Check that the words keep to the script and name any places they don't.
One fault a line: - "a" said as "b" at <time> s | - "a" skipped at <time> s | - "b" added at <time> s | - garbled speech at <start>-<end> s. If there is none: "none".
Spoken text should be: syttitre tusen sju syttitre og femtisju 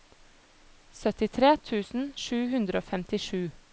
- "syttitre" said as "hundre" at 2.5 s